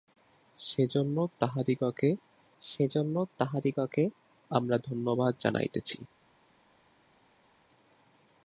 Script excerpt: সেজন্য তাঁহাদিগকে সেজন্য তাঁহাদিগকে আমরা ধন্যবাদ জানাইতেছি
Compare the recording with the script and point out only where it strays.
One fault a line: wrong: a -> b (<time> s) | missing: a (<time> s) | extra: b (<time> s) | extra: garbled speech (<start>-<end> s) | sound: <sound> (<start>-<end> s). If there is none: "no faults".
no faults